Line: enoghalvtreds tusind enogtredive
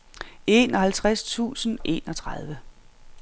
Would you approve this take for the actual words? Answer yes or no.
yes